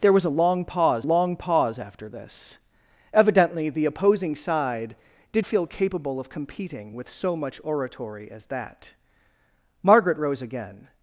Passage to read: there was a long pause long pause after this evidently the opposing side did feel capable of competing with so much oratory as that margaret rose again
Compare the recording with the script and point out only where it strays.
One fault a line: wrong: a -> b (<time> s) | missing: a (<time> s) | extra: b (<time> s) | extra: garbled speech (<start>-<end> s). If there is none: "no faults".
no faults